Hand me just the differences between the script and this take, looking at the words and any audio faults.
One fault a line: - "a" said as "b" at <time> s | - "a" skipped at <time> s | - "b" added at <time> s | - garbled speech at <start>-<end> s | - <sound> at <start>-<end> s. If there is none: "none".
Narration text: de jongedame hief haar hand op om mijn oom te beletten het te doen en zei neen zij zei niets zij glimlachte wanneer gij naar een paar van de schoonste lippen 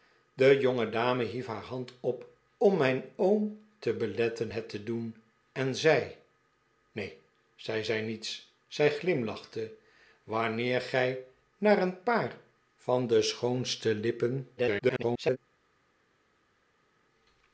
- garbled speech at 14.6-15.4 s